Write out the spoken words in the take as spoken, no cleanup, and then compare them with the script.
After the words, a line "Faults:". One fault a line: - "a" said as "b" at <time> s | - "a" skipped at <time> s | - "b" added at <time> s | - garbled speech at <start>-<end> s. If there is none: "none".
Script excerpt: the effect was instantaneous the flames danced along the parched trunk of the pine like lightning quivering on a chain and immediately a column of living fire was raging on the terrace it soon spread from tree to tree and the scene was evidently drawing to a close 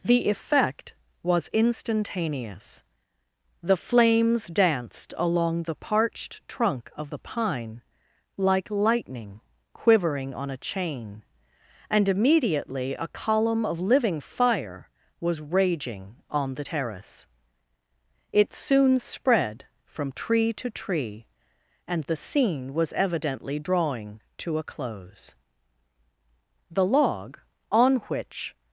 the effect was instantaneous the flames danced along the parched trunk of the pine like lightning quivering on a chain and immediately a column of living fire was raging on the terrace it soon spread from tree to tree and the scene was evidently drawing to a close the log on which
Faults:
- "the log on which" added at 26.7 s